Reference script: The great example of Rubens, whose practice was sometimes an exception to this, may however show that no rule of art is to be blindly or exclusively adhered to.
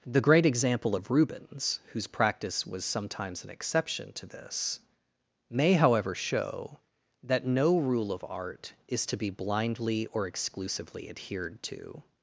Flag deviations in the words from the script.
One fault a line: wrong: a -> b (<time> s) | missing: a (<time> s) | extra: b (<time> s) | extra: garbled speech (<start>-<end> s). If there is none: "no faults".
no faults